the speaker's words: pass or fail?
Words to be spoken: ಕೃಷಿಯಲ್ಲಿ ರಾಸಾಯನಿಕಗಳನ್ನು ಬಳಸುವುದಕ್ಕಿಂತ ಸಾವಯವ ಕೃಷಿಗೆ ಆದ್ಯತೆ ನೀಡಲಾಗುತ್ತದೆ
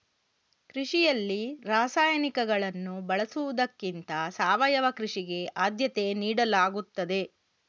pass